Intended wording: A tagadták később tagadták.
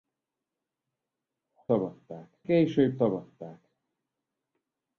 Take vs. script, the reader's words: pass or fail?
pass